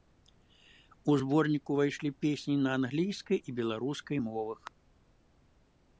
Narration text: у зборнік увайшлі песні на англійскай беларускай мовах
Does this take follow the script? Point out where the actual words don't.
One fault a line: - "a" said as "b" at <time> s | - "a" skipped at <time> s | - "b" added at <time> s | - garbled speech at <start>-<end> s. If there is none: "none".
- "і" added at 3.4 s